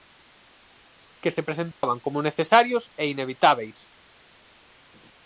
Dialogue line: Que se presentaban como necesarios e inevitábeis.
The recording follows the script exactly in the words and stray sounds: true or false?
false